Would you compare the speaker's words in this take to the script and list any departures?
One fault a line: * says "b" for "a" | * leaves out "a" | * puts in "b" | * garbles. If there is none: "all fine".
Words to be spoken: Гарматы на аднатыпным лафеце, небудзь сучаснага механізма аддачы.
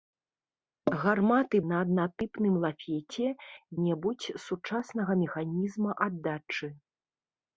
all fine